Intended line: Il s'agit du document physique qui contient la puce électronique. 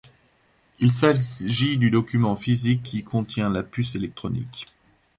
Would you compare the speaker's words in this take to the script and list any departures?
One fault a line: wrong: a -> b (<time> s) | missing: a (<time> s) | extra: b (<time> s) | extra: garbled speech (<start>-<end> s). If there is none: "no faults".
no faults